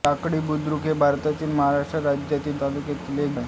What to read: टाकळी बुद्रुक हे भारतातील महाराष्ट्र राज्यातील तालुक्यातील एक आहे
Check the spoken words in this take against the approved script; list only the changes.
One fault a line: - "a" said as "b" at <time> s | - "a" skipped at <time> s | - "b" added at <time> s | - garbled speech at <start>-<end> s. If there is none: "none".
none